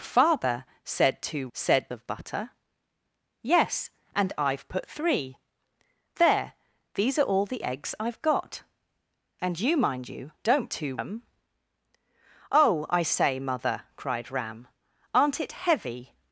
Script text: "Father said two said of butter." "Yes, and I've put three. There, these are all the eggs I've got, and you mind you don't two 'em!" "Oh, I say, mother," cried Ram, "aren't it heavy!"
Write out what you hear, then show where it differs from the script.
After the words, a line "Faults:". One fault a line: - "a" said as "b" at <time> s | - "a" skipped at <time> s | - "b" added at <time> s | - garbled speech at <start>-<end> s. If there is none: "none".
"Father said two said of butter." "Yes, and I've put three. There, these are all the eggs I've got, and you mind you don't two 'em!" "Oh, I say, mother," cried Ram, "aren't it heavy!"
Faults:
none